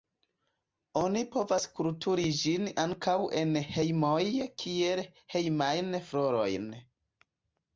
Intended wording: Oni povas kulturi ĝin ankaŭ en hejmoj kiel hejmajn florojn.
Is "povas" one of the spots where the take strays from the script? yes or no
no